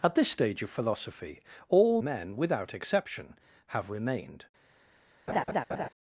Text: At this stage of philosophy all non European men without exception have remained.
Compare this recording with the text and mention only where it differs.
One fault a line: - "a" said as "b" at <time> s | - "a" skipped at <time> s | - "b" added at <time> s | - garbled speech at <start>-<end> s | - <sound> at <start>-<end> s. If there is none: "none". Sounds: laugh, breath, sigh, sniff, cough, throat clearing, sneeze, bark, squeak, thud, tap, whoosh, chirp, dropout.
- "non European" skipped at 2.0 s
- laugh at 5.3-5.9 s